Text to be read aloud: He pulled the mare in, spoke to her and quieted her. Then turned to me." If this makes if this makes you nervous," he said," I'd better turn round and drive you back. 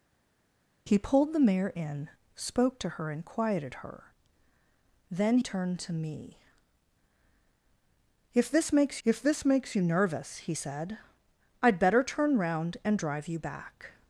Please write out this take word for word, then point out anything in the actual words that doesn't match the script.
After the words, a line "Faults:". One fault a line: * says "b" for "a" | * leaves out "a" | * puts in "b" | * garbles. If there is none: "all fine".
He pulled the mare in, spoke to her and quieted her. Then turned to me." If this makes if this makes you nervous," he said," I'd better turn round and drive you back.
Faults:
all fine